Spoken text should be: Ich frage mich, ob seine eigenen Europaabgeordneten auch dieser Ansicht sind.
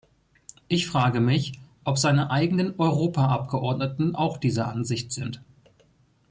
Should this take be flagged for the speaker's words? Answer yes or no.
no